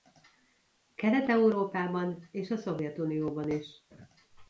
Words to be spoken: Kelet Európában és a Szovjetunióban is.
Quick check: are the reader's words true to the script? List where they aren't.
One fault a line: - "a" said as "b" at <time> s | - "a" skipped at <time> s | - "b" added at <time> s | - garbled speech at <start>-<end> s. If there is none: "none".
none